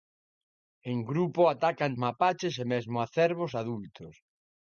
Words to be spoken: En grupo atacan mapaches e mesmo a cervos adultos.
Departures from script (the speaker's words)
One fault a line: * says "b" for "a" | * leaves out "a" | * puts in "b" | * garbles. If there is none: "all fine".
all fine